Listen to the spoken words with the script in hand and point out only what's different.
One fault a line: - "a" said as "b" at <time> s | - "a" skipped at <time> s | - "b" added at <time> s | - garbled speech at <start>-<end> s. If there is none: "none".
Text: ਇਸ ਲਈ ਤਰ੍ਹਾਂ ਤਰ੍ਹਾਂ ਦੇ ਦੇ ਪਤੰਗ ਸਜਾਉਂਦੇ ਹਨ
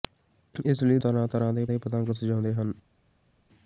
none